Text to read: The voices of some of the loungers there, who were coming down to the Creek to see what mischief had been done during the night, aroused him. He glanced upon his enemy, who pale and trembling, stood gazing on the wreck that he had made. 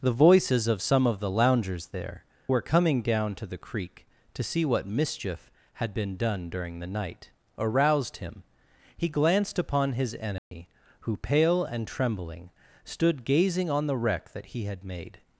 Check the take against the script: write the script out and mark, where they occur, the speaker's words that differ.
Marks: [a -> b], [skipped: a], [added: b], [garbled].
The voices of some of the loungers there, [skipped: who] were coming down to the Creek to see what mischief had been done during the night, aroused him. He glanced upon his enemy, who pale and trembling, stood gazing on the wreck that he had made.